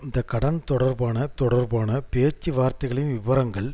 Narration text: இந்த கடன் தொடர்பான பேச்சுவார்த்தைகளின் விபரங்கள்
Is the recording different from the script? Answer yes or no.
yes